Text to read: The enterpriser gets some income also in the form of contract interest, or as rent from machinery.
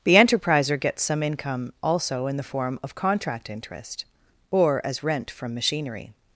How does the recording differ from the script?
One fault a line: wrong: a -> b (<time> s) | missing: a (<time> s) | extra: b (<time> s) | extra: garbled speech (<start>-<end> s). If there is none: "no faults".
no faults